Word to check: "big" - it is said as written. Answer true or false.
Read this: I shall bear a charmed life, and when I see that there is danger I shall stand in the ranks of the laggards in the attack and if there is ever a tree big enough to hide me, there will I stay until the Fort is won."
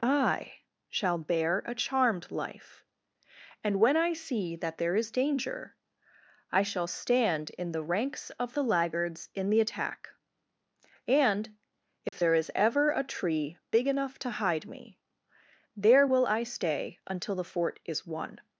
true